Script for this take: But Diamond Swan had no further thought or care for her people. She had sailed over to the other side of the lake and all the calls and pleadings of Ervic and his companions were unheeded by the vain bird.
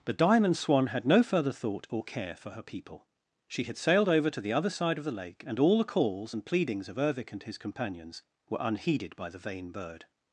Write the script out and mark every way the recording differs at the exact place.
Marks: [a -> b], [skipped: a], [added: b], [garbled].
But Diamond Swan had no further thought or care for her people. She had sailed over to the other side of the lake and all the calls and pleadings of Ervic and his companions were unheeded by the vain bird.